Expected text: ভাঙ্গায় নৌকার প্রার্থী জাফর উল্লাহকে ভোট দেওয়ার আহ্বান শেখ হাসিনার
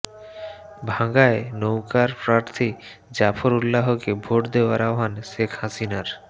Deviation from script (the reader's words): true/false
false